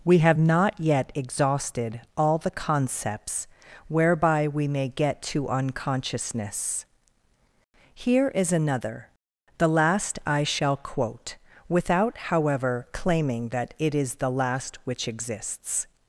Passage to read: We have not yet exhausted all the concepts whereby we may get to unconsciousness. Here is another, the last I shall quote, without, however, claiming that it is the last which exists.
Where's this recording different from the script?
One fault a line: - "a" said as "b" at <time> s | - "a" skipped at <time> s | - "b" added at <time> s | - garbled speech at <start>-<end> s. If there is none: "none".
none